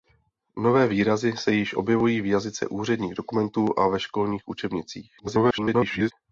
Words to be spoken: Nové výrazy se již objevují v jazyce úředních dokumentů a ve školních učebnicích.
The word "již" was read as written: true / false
true